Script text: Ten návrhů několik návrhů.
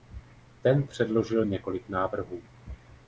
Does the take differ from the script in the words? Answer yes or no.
yes